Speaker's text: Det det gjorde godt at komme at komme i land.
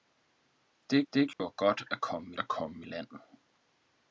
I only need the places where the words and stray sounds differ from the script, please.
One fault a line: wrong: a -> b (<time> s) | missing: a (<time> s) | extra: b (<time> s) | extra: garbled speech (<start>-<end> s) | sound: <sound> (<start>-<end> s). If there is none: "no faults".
sound: dropout (1.3-1.4 s)